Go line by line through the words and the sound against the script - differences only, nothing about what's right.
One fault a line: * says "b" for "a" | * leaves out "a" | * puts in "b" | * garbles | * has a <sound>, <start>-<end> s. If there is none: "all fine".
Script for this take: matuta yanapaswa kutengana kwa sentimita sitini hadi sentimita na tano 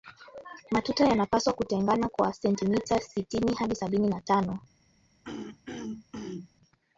* says "sabini" for "sentimita"
* has a throat clearing, 5.2-6.5 s